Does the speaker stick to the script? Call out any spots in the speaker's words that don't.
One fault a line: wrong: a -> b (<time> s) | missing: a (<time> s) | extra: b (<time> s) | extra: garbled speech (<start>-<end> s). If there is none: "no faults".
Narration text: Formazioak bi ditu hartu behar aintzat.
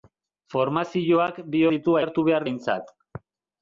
no faults